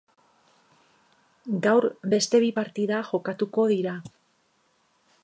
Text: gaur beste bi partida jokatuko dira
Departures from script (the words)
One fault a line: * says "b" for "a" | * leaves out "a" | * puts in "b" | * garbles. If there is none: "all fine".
all fine